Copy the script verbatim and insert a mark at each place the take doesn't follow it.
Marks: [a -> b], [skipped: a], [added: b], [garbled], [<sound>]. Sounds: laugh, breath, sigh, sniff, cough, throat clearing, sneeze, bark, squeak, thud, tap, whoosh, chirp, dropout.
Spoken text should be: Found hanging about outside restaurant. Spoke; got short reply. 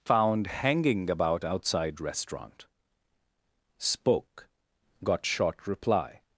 Found hanging about outside restaurant. Spoke; got short reply.